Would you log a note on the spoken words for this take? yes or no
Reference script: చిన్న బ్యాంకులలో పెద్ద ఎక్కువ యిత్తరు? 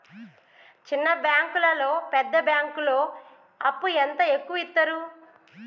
yes